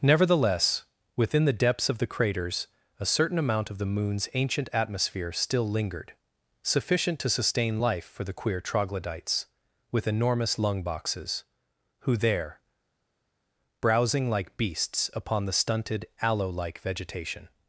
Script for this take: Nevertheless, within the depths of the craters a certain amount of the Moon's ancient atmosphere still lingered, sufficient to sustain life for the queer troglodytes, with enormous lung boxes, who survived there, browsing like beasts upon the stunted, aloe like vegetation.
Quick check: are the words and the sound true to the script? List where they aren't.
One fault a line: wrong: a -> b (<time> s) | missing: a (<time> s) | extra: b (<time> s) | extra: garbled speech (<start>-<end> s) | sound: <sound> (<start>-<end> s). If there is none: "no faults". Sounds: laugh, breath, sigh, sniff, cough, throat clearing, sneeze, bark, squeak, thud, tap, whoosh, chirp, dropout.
missing: survived (12.1 s)